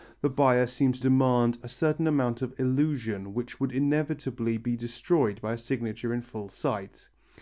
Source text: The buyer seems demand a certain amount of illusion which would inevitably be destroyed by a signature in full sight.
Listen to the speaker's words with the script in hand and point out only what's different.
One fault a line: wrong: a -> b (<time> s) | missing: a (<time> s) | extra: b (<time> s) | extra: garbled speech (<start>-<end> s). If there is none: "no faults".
no faults